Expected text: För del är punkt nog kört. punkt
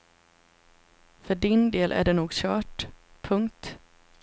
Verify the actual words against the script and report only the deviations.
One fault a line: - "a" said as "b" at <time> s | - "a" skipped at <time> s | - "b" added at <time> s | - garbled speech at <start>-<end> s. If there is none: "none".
- "din" added at 1.4 s
- "punkt" said as "det" at 2.0 s